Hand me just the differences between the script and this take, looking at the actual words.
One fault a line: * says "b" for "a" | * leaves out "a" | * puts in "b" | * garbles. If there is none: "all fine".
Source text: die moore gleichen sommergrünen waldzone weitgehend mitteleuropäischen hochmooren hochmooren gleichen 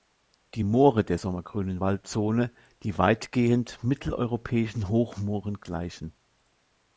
* says "der" for "gleichen"
* puts in "die"
* leaves out "hochmooren"